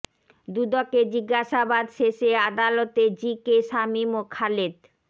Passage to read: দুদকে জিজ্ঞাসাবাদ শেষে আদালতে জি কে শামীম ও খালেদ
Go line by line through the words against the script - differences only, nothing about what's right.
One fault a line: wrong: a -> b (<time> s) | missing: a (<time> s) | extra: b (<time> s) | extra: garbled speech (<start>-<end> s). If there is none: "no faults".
no faults